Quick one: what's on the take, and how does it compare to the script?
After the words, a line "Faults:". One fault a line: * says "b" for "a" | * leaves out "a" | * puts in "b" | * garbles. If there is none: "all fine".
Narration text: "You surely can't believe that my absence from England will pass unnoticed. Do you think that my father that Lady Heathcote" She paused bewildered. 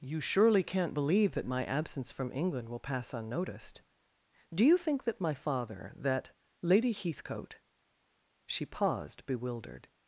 "You surely can't believe that my absence from England will pass unnoticed. Do you think that my father that Lady Heathcote" She paused bewildered.
Faults:
all fine